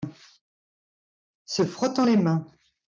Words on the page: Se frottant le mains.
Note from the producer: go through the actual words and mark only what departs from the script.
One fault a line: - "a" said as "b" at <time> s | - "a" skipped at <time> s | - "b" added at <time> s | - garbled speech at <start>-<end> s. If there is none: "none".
- "le" said as "les" at 2.0 s